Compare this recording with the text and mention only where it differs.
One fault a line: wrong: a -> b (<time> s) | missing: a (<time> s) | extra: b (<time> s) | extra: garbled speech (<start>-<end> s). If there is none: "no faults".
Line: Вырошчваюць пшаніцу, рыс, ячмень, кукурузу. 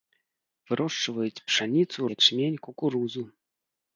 missing: рыс (2.0 s)